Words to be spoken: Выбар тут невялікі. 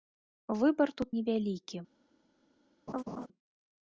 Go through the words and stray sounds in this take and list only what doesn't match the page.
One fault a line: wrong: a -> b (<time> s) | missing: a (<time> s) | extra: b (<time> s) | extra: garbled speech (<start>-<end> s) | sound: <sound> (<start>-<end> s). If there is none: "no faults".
sound: laugh (2.9-3.3 s)